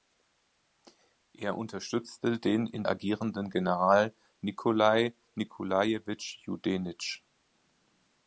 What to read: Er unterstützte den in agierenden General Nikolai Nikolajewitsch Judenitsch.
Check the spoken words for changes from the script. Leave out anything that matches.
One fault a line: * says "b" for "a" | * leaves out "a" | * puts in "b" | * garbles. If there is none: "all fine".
all fine